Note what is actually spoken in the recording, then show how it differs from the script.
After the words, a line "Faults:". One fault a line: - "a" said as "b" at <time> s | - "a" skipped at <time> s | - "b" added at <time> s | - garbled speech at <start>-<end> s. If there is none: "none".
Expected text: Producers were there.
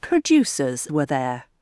Producers were there.
Faults:
none